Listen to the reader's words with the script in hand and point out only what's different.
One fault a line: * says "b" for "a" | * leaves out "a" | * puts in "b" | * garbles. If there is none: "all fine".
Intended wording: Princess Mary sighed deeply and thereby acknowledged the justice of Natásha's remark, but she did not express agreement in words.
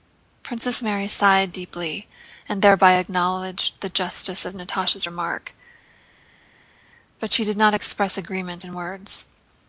all fine